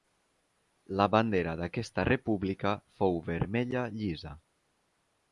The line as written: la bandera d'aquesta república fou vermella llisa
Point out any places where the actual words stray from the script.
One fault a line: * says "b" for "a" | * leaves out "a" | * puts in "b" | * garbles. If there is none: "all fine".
all fine